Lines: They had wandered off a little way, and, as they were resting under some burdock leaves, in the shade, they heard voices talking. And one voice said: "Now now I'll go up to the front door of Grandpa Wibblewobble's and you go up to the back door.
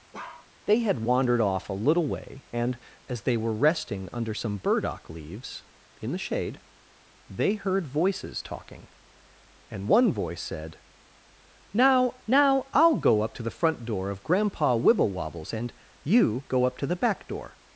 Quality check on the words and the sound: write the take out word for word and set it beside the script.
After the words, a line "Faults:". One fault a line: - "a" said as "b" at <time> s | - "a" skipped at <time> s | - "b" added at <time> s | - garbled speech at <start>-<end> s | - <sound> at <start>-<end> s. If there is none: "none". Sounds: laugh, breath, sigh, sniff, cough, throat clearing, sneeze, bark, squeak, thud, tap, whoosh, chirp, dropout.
They had wandered off a little way, and, as they were resting under some burdock leaves, in the shade, they heard voices talking. And one voice said: "Now now I'll go up to the front door of Grandpa Wibblewobble's and you go up to the back door.
Faults:
- bark at 0.1-0.5 s